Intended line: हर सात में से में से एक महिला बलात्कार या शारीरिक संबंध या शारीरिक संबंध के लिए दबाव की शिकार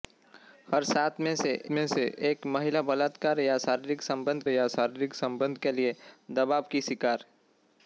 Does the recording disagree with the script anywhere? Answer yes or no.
no